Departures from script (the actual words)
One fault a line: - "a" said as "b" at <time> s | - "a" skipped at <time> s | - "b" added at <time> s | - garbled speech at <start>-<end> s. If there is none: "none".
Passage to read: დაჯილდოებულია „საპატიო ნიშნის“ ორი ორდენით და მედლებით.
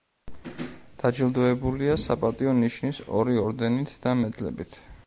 none